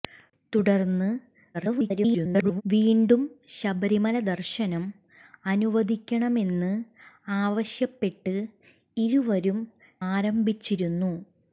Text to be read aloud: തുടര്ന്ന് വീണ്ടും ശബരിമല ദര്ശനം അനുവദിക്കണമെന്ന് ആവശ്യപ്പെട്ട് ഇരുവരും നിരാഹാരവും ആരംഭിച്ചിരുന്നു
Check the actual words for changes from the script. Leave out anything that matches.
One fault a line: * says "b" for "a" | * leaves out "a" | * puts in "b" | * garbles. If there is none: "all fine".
* garbles
* leaves out "നിരാഹാരവും"